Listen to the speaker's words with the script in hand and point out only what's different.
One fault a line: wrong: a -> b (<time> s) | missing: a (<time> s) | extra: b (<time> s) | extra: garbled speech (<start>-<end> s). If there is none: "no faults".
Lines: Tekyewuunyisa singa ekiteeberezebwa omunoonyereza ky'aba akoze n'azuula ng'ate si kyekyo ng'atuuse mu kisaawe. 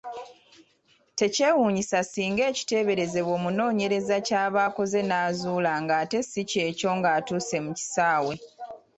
no faults